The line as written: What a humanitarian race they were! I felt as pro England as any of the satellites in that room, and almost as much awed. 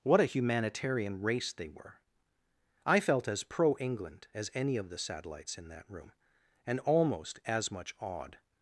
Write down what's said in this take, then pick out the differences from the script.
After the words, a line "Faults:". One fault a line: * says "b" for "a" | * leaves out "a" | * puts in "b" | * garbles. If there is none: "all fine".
What a humanitarian race they were! I felt as pro England as any of the satellites in that room, and almost as much awed.
Faults:
all fine